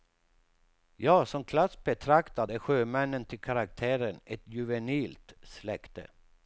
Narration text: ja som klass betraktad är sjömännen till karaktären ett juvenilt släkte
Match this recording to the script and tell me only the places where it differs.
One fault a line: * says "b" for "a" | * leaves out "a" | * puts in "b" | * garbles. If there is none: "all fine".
all fine